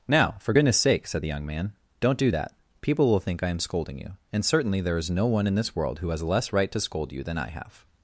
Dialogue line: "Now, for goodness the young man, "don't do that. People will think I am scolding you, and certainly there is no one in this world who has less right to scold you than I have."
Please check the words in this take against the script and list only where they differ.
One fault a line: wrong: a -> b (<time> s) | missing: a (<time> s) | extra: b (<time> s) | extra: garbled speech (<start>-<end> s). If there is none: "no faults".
extra: sake said (0.8 s)